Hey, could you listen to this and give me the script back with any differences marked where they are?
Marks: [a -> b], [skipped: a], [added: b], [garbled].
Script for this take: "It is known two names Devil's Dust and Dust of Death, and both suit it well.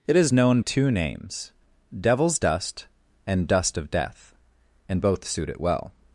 "It is known two names Devil's Dust and Dust of Death, and both suit it well.